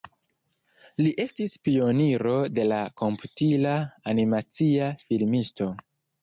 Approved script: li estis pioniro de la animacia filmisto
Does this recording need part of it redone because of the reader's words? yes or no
yes